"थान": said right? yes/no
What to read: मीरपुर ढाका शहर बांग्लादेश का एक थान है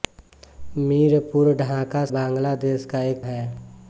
no